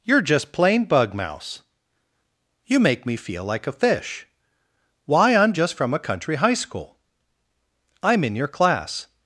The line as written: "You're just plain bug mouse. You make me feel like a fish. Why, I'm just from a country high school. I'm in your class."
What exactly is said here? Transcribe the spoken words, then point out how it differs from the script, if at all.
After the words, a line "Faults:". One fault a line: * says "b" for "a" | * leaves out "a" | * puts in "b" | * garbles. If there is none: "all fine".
"You're just plain bug mouse. You make me feel like a fish. Why, I'm just from a country high school. I'm in your class."
Faults:
all fine